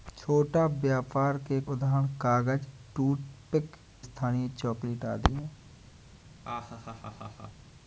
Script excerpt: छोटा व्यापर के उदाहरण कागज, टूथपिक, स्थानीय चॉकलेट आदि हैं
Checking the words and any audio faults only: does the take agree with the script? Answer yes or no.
no